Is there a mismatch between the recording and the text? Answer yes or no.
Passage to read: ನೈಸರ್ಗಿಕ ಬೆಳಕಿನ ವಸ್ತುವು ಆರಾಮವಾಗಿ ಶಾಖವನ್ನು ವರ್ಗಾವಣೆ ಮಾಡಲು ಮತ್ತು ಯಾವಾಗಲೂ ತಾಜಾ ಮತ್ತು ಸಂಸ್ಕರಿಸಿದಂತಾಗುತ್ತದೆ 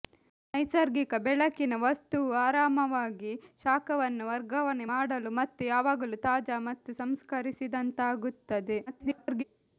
yes